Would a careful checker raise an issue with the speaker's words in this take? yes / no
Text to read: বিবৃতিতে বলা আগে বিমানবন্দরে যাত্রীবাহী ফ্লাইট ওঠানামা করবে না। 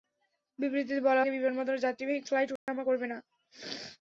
no